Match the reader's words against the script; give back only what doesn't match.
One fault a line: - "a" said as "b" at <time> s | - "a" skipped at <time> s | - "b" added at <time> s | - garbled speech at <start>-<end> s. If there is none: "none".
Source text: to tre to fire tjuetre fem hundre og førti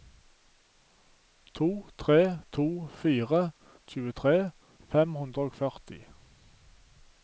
none